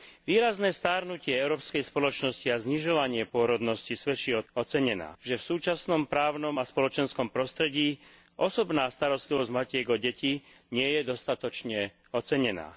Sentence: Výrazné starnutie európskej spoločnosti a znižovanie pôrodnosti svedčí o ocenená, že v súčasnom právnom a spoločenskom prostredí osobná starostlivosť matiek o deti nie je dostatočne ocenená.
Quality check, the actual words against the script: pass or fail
pass